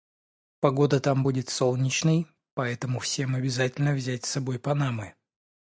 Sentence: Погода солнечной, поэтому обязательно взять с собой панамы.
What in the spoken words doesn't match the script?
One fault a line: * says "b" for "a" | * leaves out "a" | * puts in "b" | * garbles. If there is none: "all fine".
* puts in "там будет"
* puts in "всем"